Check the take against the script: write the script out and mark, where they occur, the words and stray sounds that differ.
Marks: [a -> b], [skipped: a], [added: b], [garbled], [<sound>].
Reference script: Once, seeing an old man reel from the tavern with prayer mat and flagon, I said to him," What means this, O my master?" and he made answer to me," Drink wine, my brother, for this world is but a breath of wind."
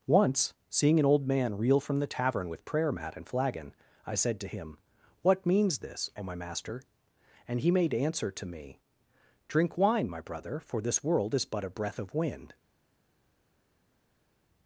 Once, seeing an old man reel from the tavern with prayer mat and flagon, I said to him," What means this, O my master?" and he made answer to me," Drink wine, my brother, for this world is but a breath of wind."